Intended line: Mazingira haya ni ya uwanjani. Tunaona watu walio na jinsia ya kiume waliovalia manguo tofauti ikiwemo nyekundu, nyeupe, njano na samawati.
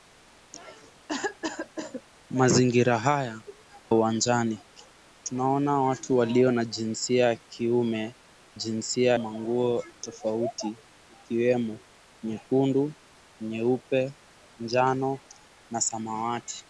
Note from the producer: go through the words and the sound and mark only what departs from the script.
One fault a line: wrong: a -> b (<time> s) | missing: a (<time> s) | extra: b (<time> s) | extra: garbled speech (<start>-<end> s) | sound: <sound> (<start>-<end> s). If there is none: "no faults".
sound: cough (1.1-2.0 s)
missing: ni ya (3.4 s)
wrong: waliovalia -> jinsia (8.5 s)